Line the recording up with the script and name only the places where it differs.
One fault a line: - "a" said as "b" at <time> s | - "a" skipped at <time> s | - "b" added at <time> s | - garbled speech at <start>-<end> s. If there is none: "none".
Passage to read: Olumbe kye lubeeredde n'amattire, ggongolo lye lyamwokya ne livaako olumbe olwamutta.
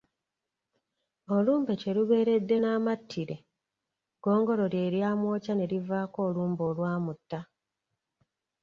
none